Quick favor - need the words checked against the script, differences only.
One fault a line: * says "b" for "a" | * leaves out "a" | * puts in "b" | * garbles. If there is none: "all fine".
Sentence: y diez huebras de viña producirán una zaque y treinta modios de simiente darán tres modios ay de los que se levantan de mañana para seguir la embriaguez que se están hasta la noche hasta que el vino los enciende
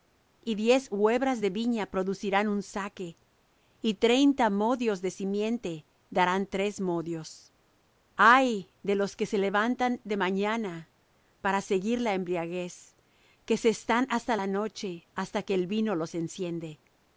* says "un" for "una"